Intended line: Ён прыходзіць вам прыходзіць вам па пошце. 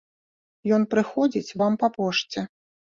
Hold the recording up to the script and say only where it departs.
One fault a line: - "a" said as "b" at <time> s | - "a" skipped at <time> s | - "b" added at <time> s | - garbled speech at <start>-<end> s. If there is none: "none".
- "прыходзіць вам" skipped at 1.7 s